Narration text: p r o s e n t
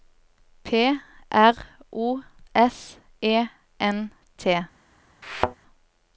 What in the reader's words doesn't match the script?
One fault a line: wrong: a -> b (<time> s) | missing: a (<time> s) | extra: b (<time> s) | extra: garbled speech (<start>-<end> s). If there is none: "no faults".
no faults